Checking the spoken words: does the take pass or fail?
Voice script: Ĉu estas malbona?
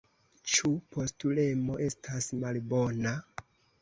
fail